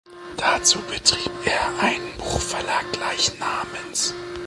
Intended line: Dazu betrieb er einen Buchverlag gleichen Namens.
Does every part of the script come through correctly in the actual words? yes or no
yes